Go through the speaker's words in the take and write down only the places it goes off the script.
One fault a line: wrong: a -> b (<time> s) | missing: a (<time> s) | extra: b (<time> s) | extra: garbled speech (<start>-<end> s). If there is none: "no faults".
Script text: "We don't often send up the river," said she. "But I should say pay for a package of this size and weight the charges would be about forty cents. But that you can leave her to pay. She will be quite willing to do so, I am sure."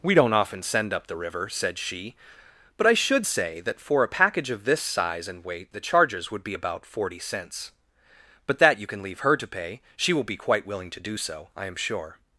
wrong: pay -> that (3.6 s)